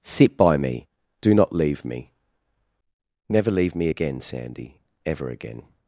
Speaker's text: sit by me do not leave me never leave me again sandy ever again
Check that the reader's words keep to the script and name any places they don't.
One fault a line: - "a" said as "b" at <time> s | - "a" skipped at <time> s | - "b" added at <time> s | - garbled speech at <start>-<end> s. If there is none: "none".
none